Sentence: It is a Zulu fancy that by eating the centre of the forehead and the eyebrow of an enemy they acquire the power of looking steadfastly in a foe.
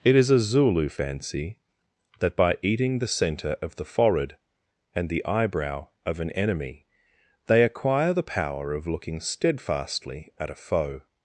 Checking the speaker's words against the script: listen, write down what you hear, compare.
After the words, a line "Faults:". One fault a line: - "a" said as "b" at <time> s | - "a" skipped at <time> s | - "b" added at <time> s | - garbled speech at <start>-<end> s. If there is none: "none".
It is a Zulu fancy that by eating the centre of the forehead and the eyebrow of an enemy they acquire the power of looking steadfastly at a foe.
Faults:
- "in" said as "at" at 10.4 s